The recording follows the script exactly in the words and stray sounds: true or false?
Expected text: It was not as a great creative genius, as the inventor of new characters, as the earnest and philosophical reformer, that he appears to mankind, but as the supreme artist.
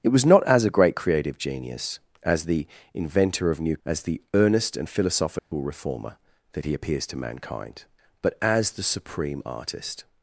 false